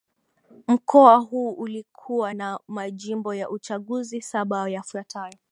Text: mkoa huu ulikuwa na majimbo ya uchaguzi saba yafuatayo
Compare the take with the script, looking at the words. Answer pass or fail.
pass